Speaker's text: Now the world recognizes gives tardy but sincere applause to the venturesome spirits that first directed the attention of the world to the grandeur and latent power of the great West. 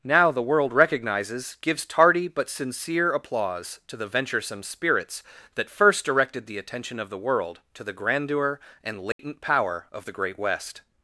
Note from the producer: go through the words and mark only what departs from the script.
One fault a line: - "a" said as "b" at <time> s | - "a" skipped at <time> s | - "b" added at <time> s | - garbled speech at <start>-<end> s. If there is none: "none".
none